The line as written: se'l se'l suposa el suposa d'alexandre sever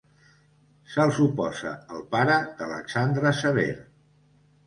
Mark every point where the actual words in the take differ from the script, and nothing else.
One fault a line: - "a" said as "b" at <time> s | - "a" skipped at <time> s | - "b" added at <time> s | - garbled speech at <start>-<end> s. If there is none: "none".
- "se'l" skipped at 1.1 s
- "suposa" said as "pare" at 2.2 s